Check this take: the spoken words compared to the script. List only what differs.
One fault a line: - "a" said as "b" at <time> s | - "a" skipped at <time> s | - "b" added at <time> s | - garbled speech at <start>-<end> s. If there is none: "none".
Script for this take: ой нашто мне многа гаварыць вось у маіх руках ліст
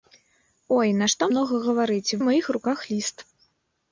- "мне" skipped at 1.3 s
- "вось" skipped at 2.2 s